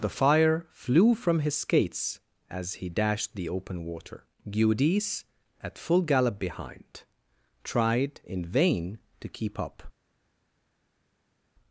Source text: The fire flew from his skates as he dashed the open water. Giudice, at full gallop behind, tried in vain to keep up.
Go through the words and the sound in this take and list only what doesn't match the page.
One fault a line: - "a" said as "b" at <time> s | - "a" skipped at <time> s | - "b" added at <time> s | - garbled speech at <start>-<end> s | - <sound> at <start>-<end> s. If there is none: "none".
none